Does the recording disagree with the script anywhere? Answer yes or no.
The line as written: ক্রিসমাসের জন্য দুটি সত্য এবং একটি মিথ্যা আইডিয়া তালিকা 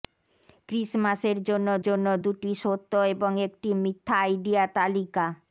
yes